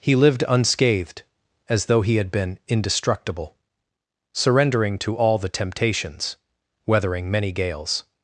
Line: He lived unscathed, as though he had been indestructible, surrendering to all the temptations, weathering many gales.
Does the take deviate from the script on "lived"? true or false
false